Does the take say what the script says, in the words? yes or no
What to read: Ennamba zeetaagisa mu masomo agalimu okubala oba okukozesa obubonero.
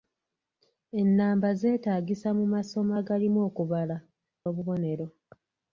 no